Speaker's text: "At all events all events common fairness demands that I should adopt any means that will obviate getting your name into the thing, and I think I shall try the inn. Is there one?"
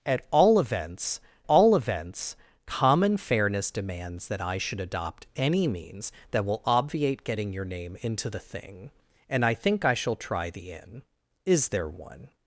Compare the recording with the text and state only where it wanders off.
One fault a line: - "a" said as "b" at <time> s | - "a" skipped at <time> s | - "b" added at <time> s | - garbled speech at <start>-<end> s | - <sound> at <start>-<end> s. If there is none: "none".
none